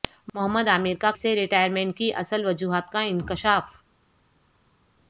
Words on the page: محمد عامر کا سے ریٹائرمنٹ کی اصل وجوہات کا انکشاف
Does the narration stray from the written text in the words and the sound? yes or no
no